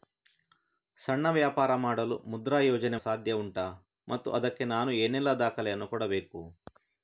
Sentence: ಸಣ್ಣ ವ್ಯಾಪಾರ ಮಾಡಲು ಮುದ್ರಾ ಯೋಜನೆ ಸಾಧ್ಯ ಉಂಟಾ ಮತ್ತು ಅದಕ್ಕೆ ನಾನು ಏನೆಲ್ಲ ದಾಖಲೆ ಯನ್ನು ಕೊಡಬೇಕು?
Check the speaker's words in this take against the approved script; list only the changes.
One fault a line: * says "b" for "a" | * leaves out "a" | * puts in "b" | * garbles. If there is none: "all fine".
all fine